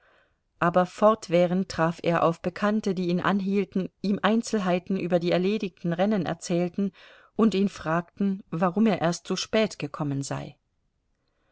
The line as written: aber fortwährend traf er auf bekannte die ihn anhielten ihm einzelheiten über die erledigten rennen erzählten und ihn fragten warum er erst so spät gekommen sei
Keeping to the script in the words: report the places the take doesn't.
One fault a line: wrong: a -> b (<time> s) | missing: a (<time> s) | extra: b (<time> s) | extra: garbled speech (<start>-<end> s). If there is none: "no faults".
no faults